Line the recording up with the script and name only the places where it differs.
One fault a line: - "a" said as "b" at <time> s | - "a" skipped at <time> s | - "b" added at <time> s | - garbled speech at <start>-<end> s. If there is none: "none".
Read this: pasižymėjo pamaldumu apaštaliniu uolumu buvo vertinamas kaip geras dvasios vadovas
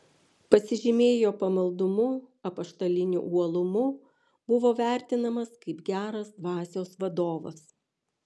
none